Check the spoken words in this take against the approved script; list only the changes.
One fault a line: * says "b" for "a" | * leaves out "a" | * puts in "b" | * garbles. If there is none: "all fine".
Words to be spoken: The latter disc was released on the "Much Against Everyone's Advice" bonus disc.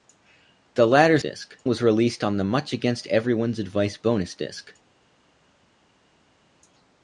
all fine